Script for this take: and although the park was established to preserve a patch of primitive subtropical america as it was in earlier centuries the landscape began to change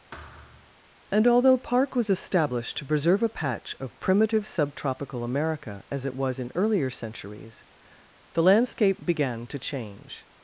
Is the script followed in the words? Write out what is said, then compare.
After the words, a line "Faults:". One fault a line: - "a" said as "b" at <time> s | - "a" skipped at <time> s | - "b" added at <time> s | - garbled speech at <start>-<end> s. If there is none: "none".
and although park was established to preserve a patch of primitive subtropical america as it was in earlier centuries the landscape began to change
Faults:
- "the" skipped at 1.6 s